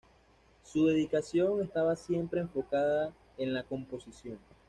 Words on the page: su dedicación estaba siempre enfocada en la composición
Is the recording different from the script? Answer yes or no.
no